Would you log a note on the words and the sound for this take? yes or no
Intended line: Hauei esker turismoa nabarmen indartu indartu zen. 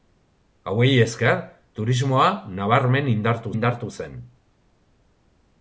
no